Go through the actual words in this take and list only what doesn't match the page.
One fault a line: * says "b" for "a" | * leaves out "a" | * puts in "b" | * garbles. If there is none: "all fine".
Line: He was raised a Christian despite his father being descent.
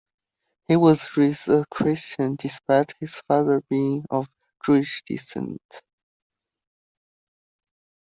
* puts in "of Jewish"